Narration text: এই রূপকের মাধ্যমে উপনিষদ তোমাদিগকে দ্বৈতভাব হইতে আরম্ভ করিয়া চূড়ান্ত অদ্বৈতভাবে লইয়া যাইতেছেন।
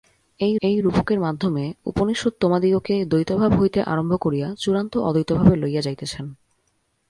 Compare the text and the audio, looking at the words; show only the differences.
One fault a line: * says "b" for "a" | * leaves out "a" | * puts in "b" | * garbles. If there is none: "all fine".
* puts in "এই"